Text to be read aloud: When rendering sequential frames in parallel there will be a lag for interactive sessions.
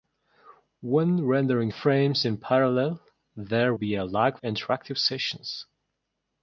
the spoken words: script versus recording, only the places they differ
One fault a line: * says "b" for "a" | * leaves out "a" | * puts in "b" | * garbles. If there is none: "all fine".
* leaves out "sequential"
* leaves out "will"
* leaves out "for"